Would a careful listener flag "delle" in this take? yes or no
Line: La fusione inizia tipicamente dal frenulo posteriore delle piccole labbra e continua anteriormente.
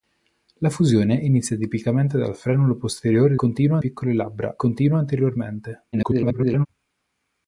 yes